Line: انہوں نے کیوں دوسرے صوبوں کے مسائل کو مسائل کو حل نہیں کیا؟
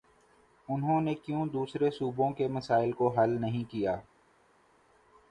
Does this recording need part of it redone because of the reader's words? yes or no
yes